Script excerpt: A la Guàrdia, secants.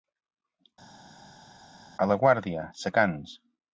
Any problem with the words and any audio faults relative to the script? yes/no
no